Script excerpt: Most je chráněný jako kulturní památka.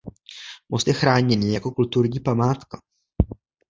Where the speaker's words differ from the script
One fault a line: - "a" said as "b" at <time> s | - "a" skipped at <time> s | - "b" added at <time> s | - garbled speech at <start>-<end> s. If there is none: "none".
none